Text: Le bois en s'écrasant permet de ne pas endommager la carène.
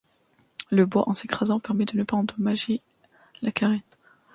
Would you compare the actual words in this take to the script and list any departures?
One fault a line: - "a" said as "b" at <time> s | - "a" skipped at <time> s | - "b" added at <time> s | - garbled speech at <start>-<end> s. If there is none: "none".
none